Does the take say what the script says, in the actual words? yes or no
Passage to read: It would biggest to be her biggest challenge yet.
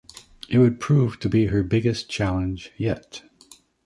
no